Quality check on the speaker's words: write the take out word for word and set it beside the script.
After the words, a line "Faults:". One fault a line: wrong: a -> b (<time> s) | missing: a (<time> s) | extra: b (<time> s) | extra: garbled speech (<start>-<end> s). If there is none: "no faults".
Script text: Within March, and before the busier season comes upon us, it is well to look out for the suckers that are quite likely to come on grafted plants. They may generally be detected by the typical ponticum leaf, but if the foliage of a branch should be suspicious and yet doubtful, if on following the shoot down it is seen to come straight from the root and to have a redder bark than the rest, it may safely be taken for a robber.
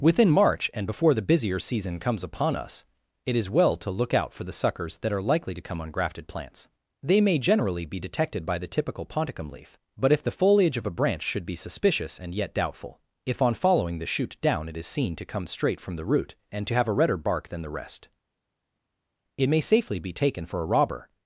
Within March, and before the busier season comes upon us, it is well to look out for the suckers that are likely to come on grafted plants. They may generally be detected by the typical ponticum leaf, but if the foliage of a branch should be suspicious and yet doubtful, if on following the shoot down it is seen to come straight from the root and to have a redder bark than the rest, it may safely be taken for a robber.
Faults:
missing: quite (5.2 s)